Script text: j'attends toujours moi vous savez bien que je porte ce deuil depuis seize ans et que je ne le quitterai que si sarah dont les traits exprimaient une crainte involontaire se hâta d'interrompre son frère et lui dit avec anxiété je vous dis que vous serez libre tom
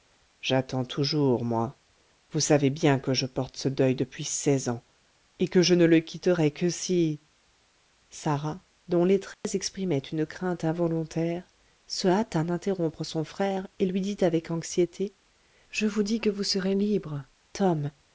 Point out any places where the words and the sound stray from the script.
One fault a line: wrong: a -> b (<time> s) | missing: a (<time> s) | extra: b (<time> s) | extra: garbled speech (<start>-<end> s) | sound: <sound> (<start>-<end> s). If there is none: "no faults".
sound: dropout (9.3-9.4 s)